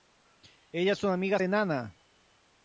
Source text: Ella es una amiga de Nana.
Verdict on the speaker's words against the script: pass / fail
pass